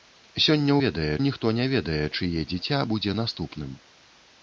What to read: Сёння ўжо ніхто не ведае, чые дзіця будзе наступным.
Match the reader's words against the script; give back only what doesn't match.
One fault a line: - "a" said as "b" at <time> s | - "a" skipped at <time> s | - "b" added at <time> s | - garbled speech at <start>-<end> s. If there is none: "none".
- "ўжо" said as "ведае" at 0.8 s